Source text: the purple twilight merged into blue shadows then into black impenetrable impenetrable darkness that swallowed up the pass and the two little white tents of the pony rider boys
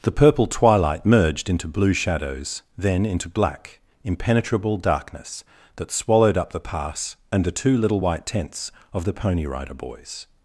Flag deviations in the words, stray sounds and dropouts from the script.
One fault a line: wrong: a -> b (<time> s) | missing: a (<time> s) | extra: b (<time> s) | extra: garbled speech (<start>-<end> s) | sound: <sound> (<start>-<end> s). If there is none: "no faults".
missing: impenetrable (4.8 s)